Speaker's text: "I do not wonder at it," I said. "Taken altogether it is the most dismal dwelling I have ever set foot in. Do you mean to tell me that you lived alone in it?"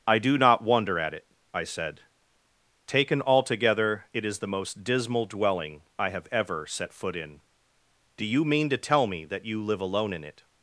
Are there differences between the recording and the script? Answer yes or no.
yes